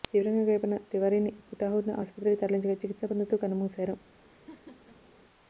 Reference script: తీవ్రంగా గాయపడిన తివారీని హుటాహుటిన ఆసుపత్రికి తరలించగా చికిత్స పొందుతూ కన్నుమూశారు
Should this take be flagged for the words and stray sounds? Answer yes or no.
yes